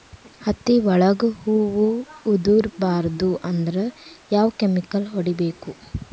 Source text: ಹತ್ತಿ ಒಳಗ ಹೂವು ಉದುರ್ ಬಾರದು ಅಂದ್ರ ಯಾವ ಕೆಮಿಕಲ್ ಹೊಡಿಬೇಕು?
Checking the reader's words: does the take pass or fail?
pass